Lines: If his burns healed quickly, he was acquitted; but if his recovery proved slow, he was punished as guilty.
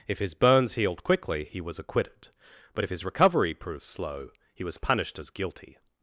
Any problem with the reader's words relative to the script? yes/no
no